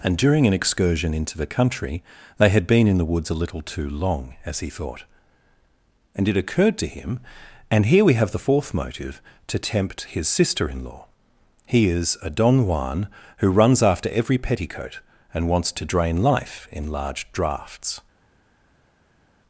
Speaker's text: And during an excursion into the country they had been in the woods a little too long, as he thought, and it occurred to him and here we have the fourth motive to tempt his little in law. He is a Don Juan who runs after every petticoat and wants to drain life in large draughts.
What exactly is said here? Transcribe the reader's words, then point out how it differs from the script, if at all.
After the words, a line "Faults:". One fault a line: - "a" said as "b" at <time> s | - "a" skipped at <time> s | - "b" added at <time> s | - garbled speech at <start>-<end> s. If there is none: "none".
And during an excursion into the country they had been in the woods a little too long, as he thought, and it occurred to him and here we have the fourth motive to tempt his sister in law. He is a Don Juan who runs after every petticoat and wants to drain life in large draughts.
Faults:
- "little" said as "sister" at 10.3 s